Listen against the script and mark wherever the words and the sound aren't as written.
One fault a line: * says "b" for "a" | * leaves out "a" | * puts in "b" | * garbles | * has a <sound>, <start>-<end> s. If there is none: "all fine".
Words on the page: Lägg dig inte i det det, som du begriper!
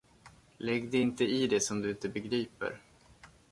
* leaves out "det"
* puts in "inte"